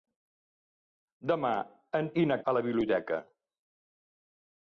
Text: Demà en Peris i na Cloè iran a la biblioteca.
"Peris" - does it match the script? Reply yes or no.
no